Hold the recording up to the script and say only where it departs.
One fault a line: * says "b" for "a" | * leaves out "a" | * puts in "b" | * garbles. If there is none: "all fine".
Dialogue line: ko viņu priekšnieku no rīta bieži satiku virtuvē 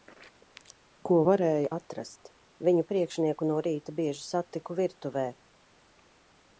* puts in "varēja atrast"